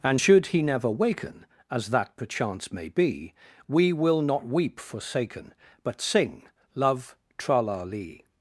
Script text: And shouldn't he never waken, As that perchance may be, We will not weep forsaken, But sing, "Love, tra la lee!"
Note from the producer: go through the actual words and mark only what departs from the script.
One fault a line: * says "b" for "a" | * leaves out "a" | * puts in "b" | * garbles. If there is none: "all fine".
* says "should" for "shouldn't"